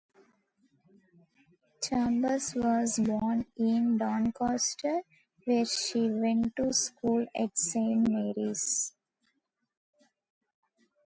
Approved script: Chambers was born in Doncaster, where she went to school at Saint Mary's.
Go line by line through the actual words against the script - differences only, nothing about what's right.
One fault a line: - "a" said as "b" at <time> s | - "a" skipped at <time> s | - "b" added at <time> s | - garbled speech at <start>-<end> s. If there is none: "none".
none